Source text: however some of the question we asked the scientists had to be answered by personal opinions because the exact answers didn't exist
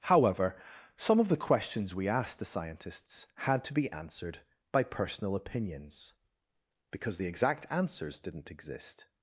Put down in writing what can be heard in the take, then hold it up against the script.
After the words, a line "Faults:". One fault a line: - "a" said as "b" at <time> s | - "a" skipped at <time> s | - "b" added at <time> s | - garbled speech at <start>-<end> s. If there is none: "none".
however some of the questions we asked the scientists had to be answered by personal opinions because the exact answers didn't exist
Faults:
- "question" said as "questions" at 1.4 s